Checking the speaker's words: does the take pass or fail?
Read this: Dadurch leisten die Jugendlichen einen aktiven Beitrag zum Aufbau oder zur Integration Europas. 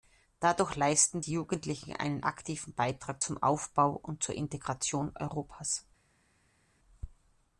fail